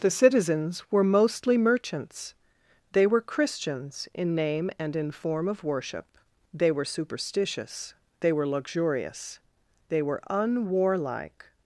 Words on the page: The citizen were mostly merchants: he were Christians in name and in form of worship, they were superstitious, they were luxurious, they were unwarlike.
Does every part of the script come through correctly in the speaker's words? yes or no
no